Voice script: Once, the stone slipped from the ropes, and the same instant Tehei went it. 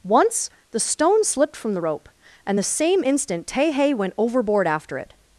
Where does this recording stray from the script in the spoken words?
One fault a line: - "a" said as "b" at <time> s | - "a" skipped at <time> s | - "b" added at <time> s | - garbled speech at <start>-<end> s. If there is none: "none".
- "ropes" said as "rope" at 1.8 s
- "overboard after" added at 4.2 s